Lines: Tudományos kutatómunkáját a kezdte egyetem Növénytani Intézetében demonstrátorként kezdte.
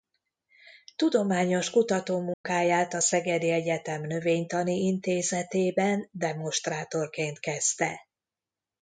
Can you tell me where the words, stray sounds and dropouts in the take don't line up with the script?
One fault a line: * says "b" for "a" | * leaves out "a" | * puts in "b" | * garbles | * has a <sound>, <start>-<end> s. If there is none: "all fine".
* has a dropout, 2.3-2.4 s
* says "szegedi" for "kezdte"